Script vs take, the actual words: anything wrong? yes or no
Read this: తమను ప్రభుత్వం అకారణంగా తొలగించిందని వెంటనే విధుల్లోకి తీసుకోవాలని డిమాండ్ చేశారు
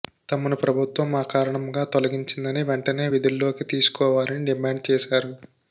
no